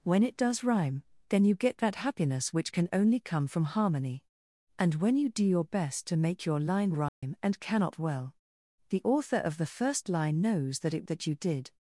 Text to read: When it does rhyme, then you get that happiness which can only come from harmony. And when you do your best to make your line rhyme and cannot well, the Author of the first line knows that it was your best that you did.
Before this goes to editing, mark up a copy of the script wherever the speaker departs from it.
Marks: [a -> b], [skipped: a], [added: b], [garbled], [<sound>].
When it does rhyme, then you get that happiness which can only come from harmony. And when you do your best to make your line rhyme [dropout] and cannot well, the Author of the first line knows that it [skipped: was your best] that you did.